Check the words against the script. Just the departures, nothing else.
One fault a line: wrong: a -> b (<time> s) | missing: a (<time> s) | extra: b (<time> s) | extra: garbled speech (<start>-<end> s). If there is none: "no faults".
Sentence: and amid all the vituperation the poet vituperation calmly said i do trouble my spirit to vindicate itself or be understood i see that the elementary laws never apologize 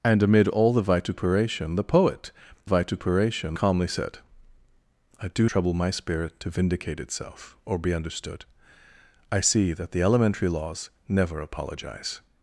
no faults